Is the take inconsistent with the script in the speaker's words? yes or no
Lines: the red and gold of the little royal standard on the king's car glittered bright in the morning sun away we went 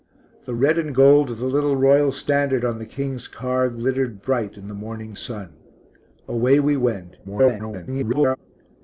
yes